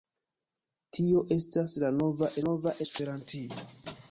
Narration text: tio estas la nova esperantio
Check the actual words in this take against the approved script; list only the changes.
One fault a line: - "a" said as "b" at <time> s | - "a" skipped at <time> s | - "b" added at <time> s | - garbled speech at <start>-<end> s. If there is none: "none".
- "nova" added at 2.5 s